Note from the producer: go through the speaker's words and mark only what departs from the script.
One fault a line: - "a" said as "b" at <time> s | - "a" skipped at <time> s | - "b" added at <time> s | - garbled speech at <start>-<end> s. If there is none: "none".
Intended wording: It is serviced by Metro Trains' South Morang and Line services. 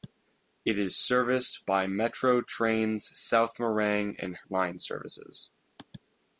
none